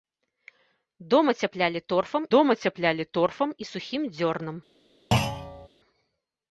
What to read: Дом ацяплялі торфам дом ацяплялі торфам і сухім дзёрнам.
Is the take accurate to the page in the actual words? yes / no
yes